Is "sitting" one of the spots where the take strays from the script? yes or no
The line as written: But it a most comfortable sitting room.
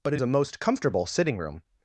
no